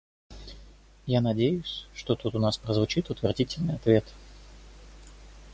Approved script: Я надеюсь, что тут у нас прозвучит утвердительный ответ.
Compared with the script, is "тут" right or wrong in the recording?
right